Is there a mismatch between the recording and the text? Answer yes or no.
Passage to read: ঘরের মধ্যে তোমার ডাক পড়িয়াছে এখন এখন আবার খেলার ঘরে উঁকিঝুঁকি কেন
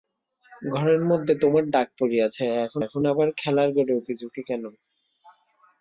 no